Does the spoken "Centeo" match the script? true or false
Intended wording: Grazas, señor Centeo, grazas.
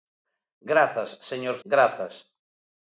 false